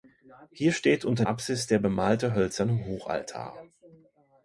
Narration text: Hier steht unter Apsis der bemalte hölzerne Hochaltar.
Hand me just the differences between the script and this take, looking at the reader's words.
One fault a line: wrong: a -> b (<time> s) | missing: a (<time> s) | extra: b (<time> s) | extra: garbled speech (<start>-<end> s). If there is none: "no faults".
no faults